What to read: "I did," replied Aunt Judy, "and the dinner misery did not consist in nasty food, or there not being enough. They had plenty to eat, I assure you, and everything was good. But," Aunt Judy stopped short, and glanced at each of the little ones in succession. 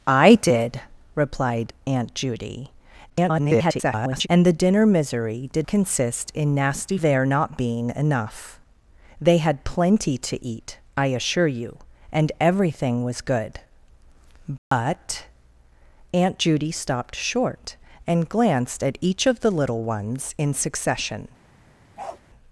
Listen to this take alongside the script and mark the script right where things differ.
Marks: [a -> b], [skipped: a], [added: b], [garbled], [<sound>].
"I did," replied Aunt Judy, [garbled] "and the dinner misery did [skipped: not] consist in nasty [skipped: food, or] there not being enough. They had plenty to eat, I assure you, and everything was good. But," [dropout] Aunt Judy stopped short, and glanced at each of the little ones in succession. [bark]